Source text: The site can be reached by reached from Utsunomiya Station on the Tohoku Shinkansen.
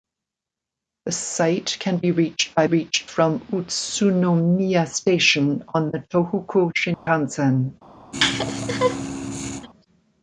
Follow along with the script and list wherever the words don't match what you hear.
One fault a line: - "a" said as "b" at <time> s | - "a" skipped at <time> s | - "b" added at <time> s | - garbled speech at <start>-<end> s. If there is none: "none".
none